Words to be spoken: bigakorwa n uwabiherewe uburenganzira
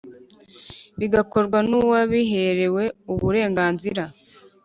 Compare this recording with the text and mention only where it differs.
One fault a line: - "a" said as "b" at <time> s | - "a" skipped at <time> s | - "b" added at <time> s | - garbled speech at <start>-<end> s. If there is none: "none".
none